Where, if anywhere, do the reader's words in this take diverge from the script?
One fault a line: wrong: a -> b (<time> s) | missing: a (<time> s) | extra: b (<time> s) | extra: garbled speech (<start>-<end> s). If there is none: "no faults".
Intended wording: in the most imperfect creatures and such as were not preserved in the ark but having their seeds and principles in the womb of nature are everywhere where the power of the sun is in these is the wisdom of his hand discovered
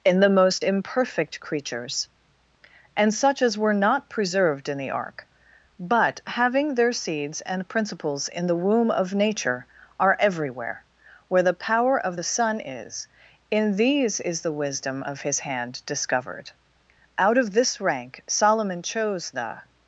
extra: out of this rank solomon chose the (17.2 s)